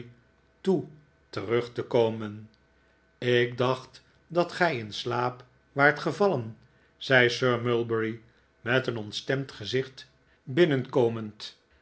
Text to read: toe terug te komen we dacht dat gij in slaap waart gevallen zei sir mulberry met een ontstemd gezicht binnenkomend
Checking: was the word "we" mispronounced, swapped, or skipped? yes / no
yes